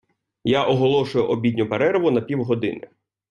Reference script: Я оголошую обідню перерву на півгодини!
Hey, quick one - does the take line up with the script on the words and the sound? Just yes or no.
yes